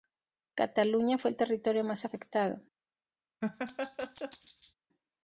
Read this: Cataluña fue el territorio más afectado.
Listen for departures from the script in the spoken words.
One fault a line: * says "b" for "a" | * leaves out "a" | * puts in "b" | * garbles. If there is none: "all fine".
all fine